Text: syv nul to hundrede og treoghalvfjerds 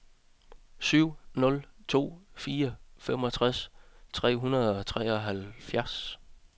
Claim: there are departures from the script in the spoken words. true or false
true